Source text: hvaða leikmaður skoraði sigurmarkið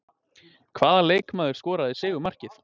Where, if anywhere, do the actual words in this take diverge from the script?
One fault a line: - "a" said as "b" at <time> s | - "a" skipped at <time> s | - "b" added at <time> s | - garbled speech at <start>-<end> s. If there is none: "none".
none